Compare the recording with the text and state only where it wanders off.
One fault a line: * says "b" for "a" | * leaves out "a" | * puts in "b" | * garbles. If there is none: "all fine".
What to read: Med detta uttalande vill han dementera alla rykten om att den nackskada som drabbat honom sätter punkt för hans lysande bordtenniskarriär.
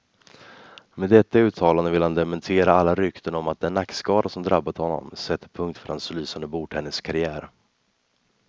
all fine